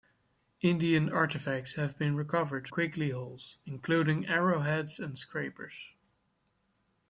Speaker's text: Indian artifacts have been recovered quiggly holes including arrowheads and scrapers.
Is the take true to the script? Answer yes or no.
yes